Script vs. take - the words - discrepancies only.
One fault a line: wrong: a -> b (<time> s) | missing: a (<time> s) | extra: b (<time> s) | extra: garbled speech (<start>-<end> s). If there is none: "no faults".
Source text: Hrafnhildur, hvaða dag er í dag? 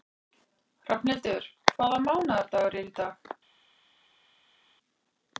wrong: dag -> mánaðardagur (2.1 s)